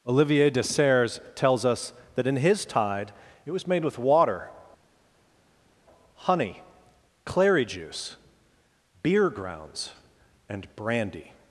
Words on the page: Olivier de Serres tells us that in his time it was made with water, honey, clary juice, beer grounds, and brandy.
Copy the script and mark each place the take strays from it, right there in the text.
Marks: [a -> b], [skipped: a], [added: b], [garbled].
Olivier de Serres tells us that in his [time -> tide] it was made with water, honey, clary juice, beer grounds, and brandy.